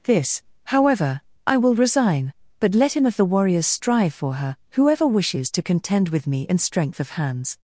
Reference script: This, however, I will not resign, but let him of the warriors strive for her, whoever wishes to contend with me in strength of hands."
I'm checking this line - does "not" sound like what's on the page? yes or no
no